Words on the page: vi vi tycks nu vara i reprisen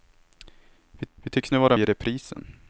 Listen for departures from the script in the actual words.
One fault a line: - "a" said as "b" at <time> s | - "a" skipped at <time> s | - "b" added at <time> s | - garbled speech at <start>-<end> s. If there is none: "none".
none